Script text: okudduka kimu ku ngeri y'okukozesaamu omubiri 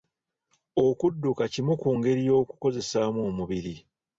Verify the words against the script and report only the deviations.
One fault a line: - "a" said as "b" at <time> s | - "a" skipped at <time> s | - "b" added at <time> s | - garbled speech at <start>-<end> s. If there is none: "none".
none